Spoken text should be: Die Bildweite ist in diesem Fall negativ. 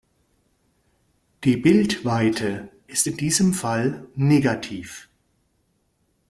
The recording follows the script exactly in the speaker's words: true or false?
true